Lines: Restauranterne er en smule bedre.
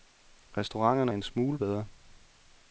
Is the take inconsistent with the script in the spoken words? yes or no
no